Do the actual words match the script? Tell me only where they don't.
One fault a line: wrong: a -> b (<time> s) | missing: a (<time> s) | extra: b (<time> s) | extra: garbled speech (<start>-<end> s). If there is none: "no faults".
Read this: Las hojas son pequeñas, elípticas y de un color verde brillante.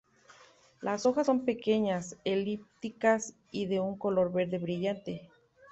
no faults